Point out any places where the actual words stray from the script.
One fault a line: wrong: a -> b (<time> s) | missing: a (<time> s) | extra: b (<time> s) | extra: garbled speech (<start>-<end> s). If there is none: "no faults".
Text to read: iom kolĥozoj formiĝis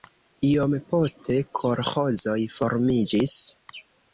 extra: poste (0.9 s)